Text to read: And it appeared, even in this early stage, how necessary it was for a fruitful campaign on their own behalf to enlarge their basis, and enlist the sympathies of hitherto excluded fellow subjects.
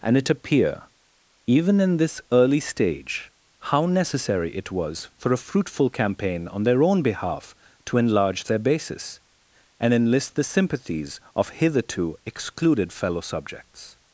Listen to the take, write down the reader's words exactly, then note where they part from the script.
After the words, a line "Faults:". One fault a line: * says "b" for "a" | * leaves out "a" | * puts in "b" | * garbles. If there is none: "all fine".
And it appear, even in this early stage, how necessary it was for a fruitful campaign on their own behalf to enlarge their basis, and enlist the sympathies of hitherto excluded fellow subjects.
Faults:
* says "appear" for "appeared"